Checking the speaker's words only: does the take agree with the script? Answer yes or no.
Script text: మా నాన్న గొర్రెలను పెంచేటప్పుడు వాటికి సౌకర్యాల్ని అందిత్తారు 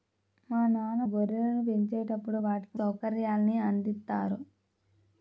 yes